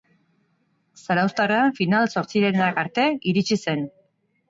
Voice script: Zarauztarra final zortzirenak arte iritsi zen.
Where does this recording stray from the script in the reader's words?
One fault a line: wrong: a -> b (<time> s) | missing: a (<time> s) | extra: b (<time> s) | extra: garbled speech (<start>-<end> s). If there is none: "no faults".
no faults